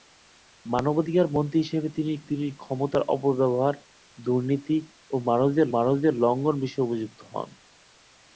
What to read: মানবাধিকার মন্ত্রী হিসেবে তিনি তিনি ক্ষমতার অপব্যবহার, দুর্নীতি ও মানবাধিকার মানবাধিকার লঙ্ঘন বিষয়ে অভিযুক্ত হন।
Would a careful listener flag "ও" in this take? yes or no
no